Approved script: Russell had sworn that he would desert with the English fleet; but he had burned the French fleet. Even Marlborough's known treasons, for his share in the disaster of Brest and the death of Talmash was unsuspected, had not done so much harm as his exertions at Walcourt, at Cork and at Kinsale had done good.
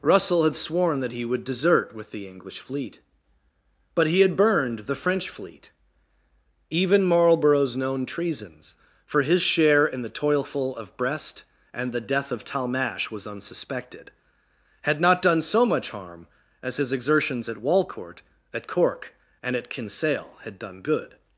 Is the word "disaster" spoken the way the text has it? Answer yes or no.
no